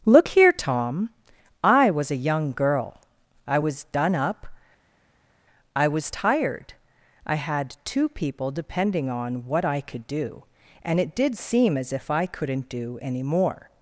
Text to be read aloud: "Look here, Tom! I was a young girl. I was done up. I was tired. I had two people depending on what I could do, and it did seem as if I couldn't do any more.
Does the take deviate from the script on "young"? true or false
false